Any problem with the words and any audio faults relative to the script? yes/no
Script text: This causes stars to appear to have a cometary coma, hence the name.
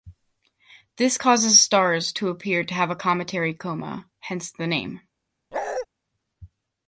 yes